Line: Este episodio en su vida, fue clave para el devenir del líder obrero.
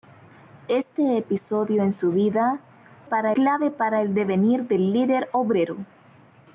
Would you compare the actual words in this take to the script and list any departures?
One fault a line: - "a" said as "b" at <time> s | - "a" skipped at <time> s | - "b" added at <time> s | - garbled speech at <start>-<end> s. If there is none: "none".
- "fue" said as "para" at 3.0 s